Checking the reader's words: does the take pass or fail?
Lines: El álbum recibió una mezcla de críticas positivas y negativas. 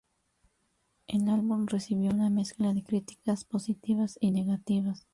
pass